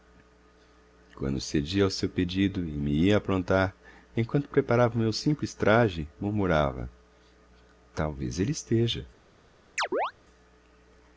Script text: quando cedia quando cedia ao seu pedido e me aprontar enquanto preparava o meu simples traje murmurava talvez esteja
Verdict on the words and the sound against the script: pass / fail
fail